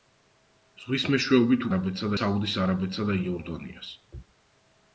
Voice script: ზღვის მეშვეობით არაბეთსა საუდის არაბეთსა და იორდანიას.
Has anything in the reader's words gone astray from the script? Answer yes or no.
no